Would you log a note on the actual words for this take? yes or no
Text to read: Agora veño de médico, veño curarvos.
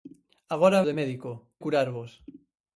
yes